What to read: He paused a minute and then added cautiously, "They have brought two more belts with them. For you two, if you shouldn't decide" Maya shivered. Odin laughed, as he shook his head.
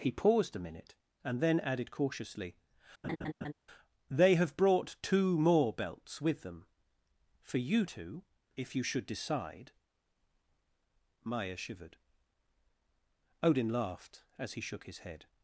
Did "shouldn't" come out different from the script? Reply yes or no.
yes